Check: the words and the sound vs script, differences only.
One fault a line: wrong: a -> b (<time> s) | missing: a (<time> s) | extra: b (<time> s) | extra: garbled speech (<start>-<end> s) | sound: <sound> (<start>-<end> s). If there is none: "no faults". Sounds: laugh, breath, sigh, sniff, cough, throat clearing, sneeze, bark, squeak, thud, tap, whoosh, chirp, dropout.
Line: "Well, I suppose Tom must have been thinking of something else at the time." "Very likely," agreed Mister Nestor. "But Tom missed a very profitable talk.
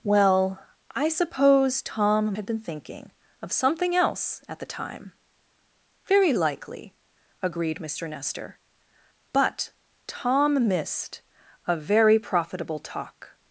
missing: must (2.4 s)